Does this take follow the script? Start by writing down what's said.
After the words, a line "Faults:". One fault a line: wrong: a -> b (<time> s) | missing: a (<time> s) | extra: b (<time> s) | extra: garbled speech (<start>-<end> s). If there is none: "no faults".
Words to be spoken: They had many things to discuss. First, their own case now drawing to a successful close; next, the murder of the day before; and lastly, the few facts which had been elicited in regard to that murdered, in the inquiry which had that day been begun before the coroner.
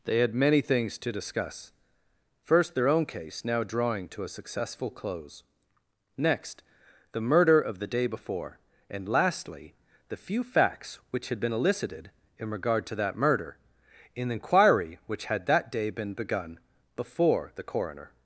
They had many things to discuss. First, their own case now drawing to a successful close; next, the murder of the day before; and lastly, the few facts which had been elicited in regard to that murder, in the inquiry which had that day been begun before the coroner.
Faults:
wrong: murdered -> murder (13.2 s)